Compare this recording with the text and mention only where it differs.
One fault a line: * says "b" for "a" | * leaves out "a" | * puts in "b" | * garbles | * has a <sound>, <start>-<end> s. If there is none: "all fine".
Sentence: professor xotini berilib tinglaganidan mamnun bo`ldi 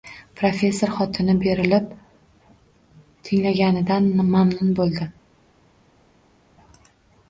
all fine